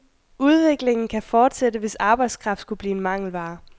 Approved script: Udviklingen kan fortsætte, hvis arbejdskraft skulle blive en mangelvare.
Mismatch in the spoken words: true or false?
false